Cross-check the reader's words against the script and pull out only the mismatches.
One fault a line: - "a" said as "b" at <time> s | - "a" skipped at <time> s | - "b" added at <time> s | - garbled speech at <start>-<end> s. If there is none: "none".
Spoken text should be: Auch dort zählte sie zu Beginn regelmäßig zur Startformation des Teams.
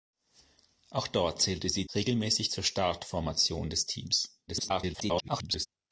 - "zu Beginn" skipped at 1.9 s
- garbled speech at 4.5-5.7 s